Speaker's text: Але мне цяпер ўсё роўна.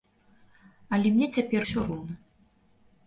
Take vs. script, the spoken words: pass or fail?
pass